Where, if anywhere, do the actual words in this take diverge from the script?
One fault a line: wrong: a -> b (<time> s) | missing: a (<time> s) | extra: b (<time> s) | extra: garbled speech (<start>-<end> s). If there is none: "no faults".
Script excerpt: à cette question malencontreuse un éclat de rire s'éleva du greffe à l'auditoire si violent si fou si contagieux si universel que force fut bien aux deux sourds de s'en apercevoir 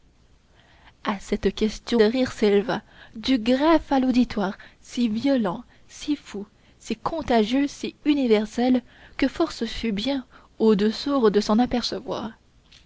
missing: malencontreuse un éclat (2.0 s)